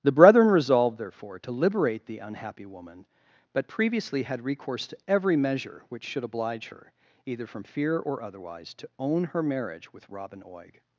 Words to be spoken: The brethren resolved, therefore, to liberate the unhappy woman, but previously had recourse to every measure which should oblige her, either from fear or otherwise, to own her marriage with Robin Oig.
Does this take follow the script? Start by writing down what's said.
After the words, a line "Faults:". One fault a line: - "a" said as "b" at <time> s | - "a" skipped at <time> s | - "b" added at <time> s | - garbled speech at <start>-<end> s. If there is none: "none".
The brethren resolved, therefore, to liberate the unhappy woman, but previously had recourse to every measure which should oblige her, either from fear or otherwise, to own her marriage with Robin Oig.
Faults:
none